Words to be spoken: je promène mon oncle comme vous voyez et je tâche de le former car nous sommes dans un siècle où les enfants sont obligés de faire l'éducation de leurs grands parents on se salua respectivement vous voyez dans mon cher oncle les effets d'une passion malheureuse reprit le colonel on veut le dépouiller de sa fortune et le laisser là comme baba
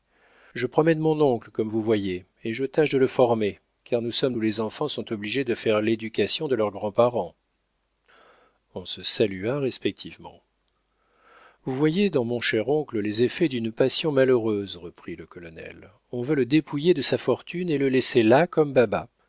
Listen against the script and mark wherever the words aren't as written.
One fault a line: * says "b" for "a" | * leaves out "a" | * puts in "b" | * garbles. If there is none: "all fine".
* leaves out "dans un siècle"